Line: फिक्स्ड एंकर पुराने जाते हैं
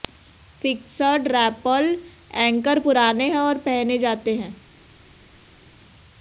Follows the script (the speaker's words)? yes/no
no